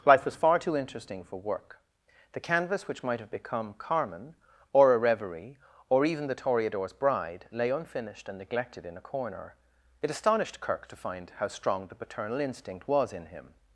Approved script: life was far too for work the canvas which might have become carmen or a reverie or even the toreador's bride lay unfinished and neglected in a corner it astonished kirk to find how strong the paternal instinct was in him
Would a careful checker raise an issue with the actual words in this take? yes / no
yes